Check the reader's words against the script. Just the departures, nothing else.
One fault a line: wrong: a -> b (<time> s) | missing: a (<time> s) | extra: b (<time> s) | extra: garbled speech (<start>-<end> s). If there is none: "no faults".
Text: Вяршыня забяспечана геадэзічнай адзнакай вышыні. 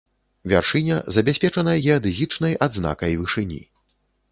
no faults